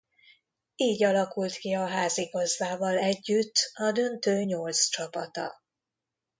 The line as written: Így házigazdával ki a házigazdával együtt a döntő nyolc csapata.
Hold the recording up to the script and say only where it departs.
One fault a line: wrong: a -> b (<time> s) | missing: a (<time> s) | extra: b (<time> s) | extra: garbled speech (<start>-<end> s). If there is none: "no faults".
wrong: házigazdával -> alakult (1.0 s)